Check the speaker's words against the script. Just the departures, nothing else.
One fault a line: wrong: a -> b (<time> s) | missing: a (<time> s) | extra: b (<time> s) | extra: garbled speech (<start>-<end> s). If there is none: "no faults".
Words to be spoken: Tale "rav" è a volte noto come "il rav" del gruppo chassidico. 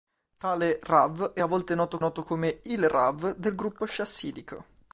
extra: noto (2.0 s)